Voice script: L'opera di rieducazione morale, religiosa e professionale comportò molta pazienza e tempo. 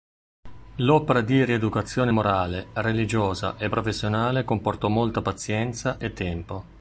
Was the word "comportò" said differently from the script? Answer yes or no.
no